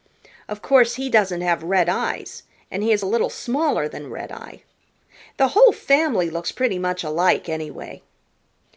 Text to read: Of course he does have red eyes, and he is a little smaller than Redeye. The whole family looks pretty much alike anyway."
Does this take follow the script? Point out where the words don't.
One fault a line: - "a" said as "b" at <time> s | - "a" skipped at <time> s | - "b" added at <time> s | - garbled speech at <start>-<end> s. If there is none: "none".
- "does" said as "doesn't" at 1.1 s